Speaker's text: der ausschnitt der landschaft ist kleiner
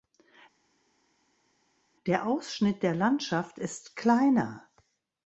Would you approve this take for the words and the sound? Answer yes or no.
yes